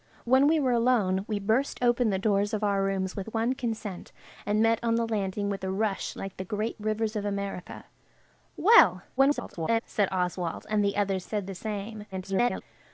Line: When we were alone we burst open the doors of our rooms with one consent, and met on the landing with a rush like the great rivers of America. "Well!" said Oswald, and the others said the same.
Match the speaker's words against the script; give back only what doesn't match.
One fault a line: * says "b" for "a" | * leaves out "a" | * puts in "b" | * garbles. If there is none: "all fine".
* garbles
* garbles